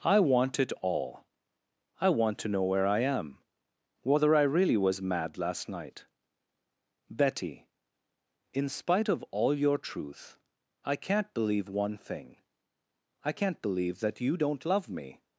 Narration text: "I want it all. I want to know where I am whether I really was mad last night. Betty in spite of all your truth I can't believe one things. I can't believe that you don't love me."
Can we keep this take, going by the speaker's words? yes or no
no